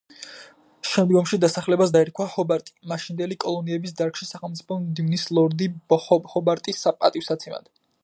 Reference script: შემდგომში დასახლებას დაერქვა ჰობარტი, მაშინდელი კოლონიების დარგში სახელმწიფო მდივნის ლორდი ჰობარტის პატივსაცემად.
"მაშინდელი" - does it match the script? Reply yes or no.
yes